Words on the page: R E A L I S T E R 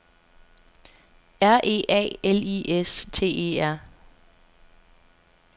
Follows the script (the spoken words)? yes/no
yes